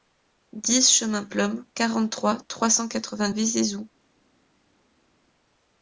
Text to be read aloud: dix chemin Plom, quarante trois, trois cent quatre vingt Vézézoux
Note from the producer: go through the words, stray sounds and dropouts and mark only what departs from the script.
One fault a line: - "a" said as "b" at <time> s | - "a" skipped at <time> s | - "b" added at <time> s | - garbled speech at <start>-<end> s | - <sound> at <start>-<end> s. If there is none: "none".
none